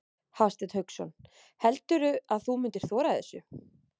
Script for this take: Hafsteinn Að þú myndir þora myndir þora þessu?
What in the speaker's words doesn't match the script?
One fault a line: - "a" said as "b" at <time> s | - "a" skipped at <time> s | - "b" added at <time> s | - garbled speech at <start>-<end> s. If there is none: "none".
- "Hauksson Heldurðu" added at 0.8 s
- "myndir þora" skipped at 3.1 s